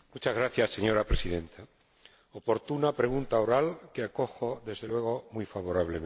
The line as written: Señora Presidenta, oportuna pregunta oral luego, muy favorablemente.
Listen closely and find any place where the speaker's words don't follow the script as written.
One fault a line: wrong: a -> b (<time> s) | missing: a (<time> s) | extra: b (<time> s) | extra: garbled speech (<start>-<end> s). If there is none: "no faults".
extra: que acojo desde (3.9 s)